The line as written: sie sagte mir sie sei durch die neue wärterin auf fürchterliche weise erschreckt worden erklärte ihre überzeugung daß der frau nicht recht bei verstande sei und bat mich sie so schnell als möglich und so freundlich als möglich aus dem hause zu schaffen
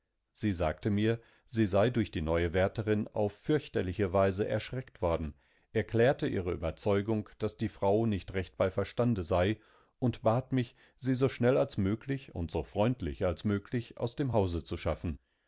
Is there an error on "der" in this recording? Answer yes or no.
yes